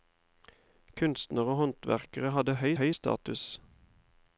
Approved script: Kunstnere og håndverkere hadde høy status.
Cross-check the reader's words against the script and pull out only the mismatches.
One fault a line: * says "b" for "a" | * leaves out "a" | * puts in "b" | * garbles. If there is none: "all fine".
* puts in "høy"